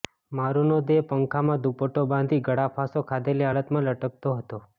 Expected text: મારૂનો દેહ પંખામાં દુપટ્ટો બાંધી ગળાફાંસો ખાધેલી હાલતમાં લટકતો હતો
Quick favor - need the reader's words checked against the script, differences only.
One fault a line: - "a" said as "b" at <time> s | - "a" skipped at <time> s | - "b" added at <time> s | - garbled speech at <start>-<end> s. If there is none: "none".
none